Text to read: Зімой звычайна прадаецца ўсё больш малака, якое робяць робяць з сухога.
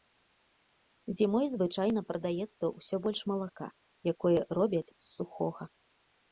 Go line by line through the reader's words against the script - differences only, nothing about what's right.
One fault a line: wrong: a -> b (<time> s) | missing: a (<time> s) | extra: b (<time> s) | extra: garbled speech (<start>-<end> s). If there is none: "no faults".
missing: робяць (4.8 s)